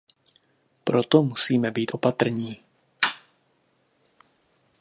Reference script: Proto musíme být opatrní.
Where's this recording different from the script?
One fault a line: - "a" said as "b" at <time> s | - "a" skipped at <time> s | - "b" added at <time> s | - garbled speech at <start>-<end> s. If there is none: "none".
none